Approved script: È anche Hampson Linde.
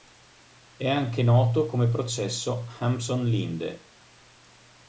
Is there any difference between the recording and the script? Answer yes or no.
yes